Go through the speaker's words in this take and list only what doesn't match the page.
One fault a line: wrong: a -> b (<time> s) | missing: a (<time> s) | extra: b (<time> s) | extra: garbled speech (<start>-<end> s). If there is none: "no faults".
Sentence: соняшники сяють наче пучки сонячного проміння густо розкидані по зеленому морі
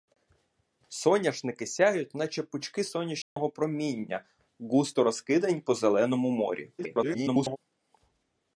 extra: garbled speech (6.8-7.6 s)